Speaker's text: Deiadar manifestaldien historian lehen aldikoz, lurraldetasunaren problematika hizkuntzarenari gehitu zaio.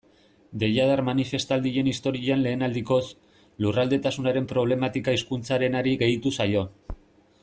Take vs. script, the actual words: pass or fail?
pass